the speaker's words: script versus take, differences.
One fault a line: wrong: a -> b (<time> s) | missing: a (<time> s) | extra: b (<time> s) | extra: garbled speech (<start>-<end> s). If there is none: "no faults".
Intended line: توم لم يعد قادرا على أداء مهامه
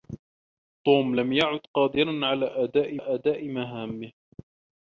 extra: أداء (3.0 s)